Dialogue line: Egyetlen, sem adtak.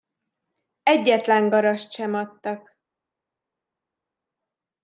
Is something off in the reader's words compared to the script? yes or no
yes